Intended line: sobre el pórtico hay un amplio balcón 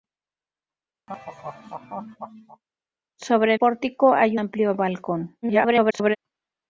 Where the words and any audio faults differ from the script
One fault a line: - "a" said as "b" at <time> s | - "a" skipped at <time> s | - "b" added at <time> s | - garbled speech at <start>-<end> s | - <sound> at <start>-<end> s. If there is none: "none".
- laugh at 1.1-2.6 s
- "el" skipped at 3.5 s
- "un" skipped at 4.4 s
- garbled speech at 5.4-6.2 s